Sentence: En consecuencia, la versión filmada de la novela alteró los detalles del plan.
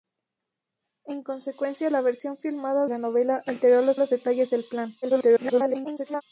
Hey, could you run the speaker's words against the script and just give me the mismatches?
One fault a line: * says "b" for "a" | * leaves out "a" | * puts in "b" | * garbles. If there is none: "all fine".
* leaves out "de"
* puts in "los"
* garbles